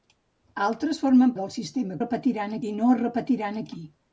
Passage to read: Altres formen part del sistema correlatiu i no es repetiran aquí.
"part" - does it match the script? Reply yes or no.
no